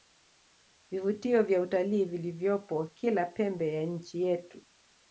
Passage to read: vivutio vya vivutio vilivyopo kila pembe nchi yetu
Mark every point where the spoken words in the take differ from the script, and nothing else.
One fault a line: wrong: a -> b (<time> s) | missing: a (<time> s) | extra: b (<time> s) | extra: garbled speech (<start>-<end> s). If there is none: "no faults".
wrong: vivutio -> utalii (1.6 s)
extra: ya (3.7 s)